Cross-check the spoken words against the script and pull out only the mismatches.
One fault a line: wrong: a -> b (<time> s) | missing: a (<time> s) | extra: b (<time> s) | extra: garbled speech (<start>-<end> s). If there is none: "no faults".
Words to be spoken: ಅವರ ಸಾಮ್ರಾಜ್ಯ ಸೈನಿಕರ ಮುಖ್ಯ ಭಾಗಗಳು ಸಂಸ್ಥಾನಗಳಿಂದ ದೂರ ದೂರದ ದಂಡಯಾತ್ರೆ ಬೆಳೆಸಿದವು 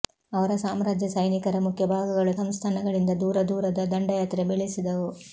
no faults